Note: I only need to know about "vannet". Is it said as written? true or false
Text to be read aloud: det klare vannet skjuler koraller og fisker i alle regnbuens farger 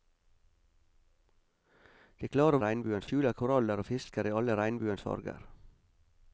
false